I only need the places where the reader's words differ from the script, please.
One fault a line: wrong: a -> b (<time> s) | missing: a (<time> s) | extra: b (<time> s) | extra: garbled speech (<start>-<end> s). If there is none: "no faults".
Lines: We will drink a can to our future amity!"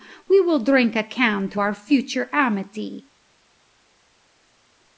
no faults